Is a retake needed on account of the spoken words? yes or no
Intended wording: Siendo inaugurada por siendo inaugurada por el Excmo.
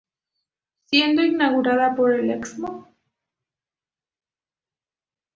yes